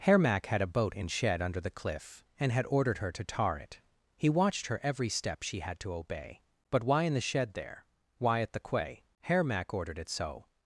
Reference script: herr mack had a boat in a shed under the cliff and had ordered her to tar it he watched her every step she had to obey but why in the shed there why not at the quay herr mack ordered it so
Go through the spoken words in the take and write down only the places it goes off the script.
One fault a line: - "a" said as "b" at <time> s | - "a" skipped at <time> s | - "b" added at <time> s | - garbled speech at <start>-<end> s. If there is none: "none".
- "a" skipped at 1.1 s
- "not" skipped at 8.4 s